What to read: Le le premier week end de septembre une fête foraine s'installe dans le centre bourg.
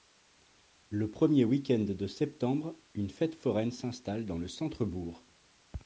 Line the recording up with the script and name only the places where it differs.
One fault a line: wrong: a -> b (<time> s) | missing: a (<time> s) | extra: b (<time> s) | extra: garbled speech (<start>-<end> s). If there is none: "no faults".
missing: le (1.1 s)